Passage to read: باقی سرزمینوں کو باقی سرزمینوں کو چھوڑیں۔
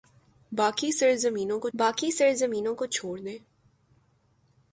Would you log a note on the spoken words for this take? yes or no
no